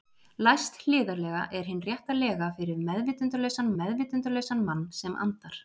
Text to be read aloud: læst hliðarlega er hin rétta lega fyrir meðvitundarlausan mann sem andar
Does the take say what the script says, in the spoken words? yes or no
no